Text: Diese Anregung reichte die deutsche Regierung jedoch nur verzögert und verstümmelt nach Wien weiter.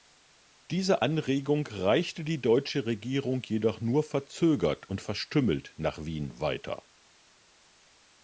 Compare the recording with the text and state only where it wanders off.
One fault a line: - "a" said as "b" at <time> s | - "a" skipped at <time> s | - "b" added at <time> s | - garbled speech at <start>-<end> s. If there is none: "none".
none